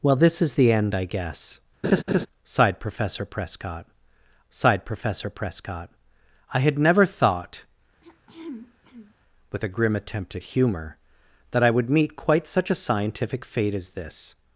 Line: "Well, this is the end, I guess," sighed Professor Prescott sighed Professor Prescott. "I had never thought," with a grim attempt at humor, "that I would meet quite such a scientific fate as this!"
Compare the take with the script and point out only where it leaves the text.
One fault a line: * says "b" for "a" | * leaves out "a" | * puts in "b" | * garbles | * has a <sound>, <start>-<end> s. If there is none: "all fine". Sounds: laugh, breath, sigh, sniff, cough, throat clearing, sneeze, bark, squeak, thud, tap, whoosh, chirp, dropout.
* has a laugh, 1.8-2.3 s
* has a throat clearing, 8.0-9.1 s